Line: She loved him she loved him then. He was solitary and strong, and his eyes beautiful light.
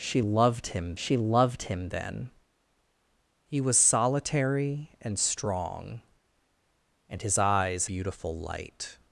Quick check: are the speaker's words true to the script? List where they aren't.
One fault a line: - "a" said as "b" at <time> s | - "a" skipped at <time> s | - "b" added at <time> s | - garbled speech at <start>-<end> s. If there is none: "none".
none